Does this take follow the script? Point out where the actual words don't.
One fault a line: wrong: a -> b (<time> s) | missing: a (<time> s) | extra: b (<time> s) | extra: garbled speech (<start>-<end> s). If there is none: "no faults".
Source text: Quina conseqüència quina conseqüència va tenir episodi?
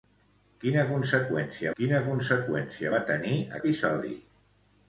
no faults